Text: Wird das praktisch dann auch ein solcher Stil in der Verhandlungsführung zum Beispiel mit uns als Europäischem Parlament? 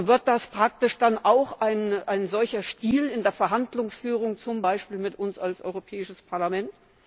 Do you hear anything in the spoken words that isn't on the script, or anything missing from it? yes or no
no